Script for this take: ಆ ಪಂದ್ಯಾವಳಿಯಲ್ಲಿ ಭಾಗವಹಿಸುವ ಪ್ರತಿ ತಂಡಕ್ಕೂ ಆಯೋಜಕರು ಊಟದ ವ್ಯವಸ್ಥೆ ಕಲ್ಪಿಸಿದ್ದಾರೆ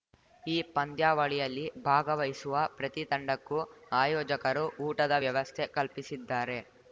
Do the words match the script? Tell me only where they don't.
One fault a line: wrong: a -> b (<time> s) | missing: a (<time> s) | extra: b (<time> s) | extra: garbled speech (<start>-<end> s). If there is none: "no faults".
wrong: ಆ -> ಈ (0.4 s)